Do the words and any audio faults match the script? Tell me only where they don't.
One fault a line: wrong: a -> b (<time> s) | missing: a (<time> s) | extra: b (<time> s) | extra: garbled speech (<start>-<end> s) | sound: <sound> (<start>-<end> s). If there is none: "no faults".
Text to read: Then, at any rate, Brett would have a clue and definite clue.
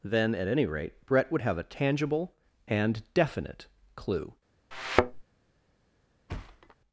wrong: clue -> tangible (1.6 s)
sound: thud (4.7-5.2 s)
sound: thud (6.3-6.8 s)